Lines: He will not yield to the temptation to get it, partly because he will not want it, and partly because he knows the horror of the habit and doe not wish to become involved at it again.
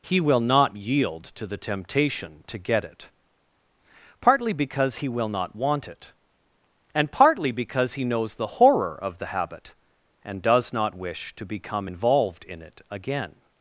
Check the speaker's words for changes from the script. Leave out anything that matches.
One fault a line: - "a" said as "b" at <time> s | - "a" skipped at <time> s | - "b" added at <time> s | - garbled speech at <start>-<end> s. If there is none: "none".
- "doe" said as "does" at 10.4 s
- "at" said as "in" at 12.4 s